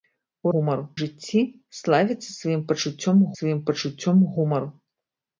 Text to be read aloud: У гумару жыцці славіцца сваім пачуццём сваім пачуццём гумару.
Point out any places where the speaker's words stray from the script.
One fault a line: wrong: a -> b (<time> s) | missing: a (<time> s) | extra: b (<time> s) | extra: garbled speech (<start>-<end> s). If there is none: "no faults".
no faults